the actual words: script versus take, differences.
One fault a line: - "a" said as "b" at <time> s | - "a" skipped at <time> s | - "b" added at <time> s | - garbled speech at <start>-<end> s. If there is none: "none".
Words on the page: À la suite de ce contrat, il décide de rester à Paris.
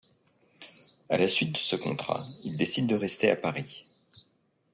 none